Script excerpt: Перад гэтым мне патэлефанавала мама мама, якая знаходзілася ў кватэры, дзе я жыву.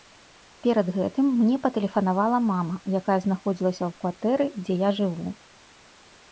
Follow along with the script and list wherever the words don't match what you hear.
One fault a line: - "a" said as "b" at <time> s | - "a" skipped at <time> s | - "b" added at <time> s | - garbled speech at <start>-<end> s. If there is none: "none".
- "мама" skipped at 2.8 s